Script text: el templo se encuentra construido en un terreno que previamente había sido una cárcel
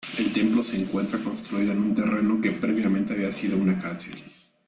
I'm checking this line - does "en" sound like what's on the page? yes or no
yes